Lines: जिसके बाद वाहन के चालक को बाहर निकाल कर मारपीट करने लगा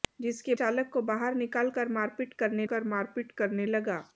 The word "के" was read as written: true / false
false